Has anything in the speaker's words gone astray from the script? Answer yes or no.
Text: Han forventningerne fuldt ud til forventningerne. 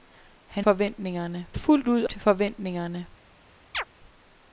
no